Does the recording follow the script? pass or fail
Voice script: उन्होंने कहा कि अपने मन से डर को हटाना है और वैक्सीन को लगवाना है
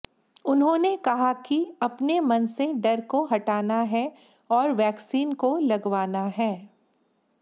pass